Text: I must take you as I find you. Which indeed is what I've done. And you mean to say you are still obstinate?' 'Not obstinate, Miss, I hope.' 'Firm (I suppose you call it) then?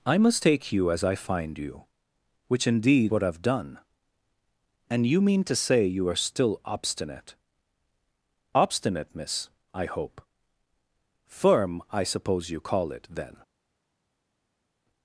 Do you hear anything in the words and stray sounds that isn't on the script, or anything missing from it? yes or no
yes